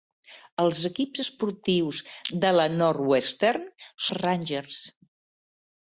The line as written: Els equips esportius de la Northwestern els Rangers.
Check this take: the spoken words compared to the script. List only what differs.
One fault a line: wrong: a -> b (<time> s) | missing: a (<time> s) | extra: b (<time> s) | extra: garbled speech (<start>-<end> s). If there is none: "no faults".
no faults